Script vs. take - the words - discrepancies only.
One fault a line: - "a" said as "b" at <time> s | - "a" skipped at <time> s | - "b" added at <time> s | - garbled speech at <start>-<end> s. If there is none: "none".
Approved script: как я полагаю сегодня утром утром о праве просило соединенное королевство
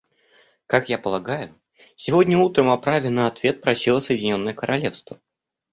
- "утром" skipped at 2.7 s
- "на ответ" added at 3.1 s